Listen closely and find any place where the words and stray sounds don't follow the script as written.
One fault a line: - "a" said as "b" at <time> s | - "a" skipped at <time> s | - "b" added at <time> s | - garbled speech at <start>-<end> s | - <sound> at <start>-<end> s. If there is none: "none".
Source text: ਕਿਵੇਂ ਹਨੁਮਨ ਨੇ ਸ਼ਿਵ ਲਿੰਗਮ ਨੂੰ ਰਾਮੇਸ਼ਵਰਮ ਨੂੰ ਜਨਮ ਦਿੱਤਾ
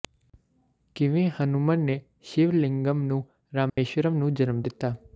- dropout at 3.7-3.8 s